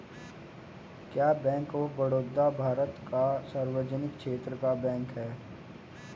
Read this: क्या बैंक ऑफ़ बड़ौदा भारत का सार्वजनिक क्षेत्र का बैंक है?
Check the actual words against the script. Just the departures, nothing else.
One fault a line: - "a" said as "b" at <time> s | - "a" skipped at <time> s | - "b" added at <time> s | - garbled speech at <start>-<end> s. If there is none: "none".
none